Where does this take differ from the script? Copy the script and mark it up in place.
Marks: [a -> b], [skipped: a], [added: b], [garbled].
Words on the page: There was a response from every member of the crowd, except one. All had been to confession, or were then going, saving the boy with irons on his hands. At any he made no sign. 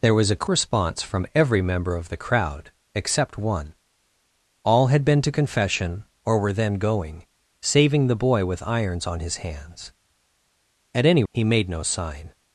There was a response from every member of the crowd, except one. All had been to confession, or were then going, saving the boy with irons on his hands. At any he made no sign.